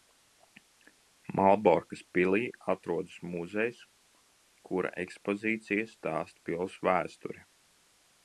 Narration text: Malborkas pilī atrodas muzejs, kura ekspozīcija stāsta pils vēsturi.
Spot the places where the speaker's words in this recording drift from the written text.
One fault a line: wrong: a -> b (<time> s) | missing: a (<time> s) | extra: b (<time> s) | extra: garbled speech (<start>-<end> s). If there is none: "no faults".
no faults